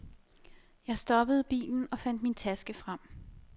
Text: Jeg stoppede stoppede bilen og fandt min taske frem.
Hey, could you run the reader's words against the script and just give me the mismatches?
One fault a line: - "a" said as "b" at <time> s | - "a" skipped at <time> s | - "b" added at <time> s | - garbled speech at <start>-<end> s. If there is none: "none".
- "stoppede" skipped at 1.4 s